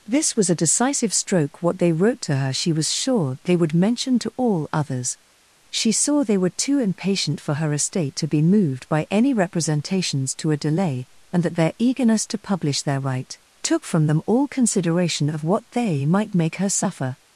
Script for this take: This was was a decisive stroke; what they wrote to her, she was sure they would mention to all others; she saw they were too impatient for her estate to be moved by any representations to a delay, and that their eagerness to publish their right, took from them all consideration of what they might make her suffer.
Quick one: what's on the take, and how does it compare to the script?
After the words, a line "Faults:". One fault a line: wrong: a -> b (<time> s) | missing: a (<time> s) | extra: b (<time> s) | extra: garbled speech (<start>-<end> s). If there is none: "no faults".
This was a decisive stroke; what they wrote to her, she was sure they would mention to all others; she saw they were too impatient for her estate to be moved by any representations to a delay, and that their eagerness to publish their right, took from them all consideration of what they might make her suffer.
Faults:
missing: was (0.5 s)